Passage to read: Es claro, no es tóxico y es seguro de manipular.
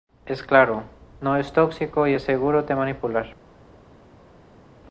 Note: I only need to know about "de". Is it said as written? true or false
true